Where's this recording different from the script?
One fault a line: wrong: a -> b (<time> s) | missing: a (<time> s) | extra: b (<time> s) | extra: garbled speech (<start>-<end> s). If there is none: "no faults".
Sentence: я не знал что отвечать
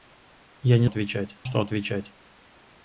wrong: знал -> отвечать (0.8 s)